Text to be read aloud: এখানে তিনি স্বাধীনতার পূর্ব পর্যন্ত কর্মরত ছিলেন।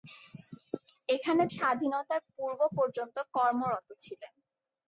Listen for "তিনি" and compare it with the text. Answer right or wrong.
wrong